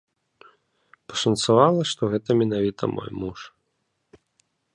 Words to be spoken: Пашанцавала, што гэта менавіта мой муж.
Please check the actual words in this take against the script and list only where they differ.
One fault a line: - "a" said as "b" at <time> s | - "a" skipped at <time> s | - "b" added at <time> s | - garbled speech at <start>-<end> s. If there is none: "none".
none